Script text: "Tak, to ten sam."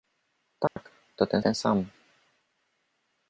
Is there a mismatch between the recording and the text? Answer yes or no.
yes